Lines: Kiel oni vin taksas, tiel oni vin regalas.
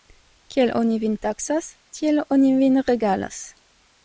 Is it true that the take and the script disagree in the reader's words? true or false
false